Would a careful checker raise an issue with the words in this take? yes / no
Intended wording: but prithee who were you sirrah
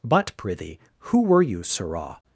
no